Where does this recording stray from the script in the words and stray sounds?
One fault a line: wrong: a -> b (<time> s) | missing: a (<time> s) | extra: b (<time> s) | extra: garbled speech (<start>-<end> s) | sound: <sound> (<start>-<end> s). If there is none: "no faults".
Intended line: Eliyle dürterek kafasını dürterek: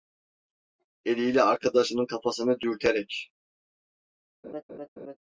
wrong: dürterek -> arkadaşının (1.4 s)
sound: laugh (4.4-5.2 s)